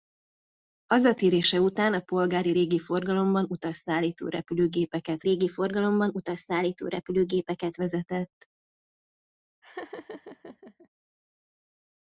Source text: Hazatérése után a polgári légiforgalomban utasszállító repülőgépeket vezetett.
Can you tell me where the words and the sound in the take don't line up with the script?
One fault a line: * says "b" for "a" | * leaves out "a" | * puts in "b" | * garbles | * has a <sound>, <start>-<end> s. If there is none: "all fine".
* puts in "légiforgalomban utasszállító repülőgépeket"
* has a laugh, 9.6-10.9 s